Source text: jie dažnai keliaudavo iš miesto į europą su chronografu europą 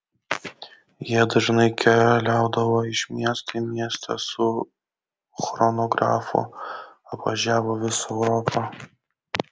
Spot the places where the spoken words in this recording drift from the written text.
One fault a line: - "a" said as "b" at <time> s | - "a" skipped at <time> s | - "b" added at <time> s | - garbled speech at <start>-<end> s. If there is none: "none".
- "europą" said as "miestą" at 3.7 s
- "apvažiavo visą" added at 7.2 s